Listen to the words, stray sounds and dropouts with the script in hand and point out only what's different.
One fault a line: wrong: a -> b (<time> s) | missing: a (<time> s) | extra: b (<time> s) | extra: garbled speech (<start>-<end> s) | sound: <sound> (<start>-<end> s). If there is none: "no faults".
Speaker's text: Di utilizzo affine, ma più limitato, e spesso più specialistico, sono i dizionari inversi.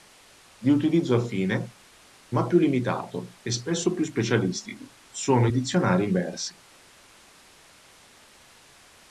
no faults